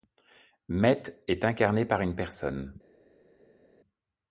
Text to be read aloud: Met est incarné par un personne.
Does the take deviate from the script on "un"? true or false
true